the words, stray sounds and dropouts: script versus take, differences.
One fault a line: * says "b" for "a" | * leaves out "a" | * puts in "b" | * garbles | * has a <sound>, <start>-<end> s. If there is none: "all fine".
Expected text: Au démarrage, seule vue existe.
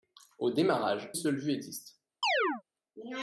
* has a chirp, 2.2-2.6 s